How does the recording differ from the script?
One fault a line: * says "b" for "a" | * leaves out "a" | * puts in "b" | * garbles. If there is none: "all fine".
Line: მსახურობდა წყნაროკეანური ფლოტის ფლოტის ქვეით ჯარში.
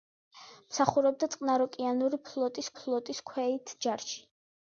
all fine